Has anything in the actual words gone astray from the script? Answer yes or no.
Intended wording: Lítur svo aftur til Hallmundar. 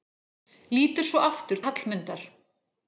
yes